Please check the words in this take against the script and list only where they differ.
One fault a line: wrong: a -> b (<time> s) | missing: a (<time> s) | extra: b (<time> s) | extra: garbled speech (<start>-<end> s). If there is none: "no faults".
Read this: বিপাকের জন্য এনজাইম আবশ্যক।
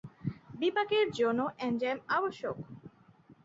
no faults